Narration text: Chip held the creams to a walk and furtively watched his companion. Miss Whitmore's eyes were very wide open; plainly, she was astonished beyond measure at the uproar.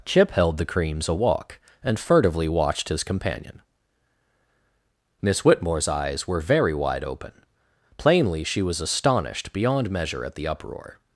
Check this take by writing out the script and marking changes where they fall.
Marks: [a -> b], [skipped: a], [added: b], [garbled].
Chip held the creams [skipped: to] a walk and furtively watched his companion. Miss Whitmore's eyes were very wide open; plainly, she was astonished beyond measure at the uproar.